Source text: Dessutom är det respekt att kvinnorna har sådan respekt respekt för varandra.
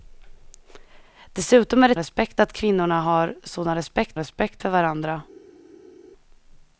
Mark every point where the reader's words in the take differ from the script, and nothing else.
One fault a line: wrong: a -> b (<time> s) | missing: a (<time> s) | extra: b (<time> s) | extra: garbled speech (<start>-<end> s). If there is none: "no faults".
no faults